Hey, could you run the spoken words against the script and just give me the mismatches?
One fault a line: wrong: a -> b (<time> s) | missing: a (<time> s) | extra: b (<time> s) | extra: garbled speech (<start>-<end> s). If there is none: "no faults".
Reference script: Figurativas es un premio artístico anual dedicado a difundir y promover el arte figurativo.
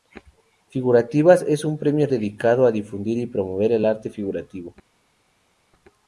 missing: artístico anual (2.1 s)